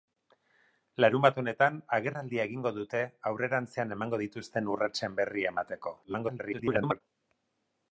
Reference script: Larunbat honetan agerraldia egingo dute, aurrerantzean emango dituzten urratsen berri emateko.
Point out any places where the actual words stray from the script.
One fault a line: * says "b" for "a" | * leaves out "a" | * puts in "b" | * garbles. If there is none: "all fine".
* garbles